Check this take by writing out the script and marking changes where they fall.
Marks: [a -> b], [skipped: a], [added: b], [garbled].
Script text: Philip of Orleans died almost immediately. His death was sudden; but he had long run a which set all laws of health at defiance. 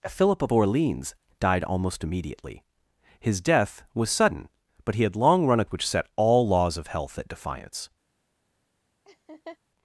Philip of Orleans died almost immediately. His death was sudden; but he had long run a which set all laws of health at defiance.